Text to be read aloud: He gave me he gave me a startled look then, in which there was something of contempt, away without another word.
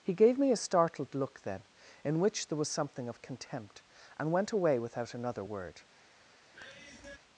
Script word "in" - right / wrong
right